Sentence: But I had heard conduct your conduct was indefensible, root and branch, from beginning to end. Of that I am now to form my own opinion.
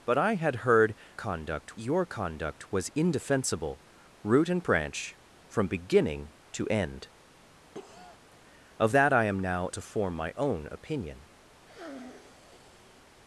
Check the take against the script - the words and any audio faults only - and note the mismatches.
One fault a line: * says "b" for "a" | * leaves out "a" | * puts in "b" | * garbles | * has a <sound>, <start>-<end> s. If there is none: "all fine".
* has a cough, 7.7-8.2 s
* has a sniff, 11.6-13.1 s